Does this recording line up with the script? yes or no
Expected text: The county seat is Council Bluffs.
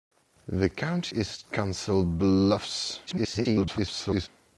no